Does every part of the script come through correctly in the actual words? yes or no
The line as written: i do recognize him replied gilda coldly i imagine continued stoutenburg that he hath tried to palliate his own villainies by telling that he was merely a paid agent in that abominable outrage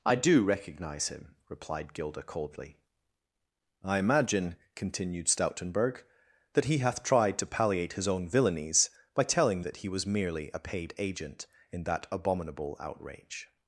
yes